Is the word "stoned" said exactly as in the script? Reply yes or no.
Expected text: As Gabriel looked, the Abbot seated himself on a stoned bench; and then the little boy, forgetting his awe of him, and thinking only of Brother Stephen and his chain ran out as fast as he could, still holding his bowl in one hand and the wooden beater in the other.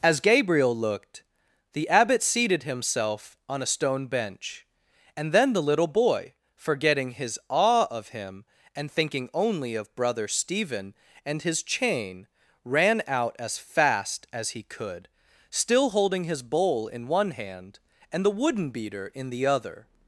no